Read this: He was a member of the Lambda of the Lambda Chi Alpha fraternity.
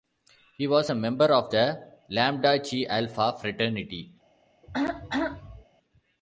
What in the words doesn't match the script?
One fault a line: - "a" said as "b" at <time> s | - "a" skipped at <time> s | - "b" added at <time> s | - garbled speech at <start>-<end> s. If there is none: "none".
- "of the Lambda" skipped at 2.6 s